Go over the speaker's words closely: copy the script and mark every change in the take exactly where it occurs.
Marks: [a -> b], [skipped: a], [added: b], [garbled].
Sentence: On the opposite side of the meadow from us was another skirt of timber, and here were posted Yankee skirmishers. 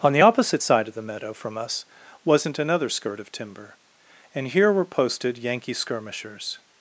On the opposite side of the meadow from us [was -> wasn't] another skirt of timber, and here were posted Yankee skirmishers.